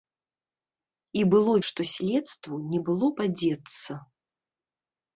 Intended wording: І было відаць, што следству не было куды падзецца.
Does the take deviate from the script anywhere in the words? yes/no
yes